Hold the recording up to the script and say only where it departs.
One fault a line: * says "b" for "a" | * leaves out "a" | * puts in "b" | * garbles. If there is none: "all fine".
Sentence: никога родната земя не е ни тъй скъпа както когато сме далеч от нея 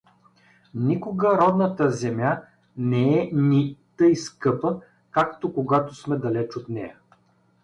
all fine